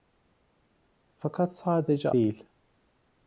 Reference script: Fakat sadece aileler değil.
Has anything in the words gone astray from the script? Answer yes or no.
yes